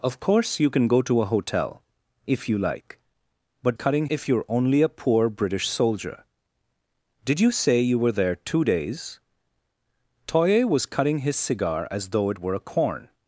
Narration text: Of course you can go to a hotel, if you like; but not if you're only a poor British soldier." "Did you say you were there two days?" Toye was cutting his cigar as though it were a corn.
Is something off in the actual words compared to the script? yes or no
yes